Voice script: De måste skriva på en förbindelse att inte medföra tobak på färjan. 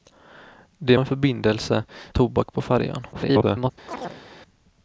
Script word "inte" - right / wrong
wrong